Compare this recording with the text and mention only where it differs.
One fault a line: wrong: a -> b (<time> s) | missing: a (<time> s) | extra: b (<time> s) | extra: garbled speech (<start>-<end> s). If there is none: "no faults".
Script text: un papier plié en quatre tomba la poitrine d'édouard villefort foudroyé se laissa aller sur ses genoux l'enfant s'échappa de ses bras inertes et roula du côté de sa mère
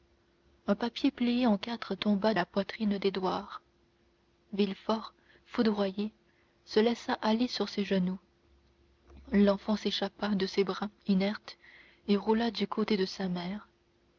no faults